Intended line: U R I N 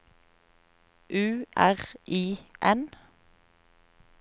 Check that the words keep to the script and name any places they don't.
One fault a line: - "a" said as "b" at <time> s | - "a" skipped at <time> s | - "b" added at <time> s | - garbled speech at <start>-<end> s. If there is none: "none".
none